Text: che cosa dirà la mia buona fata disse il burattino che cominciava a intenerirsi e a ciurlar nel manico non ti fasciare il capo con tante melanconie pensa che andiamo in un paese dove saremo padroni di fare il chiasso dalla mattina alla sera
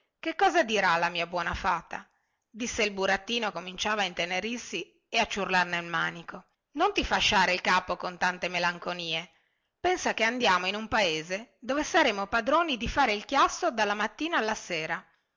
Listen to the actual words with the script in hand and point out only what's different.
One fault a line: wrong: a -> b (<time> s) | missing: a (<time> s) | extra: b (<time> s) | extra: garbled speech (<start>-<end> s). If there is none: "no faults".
missing: che (3.5 s)